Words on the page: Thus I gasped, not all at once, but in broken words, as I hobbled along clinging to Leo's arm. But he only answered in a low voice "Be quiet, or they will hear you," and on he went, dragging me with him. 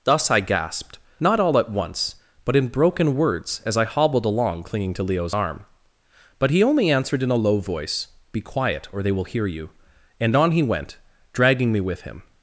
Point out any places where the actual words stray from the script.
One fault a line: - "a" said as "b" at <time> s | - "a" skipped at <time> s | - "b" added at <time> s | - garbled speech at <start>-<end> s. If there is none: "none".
none